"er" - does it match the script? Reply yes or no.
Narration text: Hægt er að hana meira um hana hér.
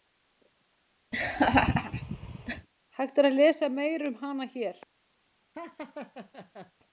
yes